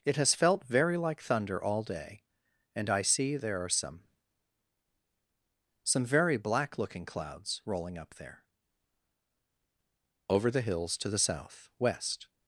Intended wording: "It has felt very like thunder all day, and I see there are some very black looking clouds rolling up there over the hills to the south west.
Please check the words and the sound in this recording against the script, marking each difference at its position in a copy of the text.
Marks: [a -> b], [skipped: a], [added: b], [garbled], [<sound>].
"It has felt very like thunder all day, and I see there are some [added: some] very black looking clouds rolling up there over the hills to the south west.